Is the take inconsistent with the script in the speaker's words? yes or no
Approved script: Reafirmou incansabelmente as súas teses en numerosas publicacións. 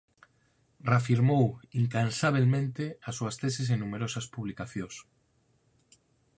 no